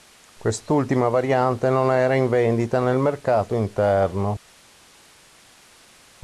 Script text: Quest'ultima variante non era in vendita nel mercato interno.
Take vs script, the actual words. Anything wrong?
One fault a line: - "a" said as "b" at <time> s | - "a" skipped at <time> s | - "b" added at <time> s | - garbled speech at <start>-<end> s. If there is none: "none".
none